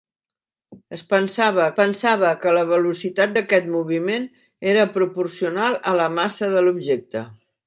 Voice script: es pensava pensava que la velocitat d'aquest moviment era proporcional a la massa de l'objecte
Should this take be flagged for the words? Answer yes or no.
no